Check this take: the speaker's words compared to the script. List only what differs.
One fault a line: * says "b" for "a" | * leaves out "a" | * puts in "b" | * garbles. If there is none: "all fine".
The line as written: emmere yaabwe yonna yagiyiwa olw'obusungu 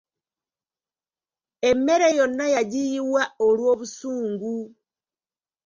* leaves out "yaabwe"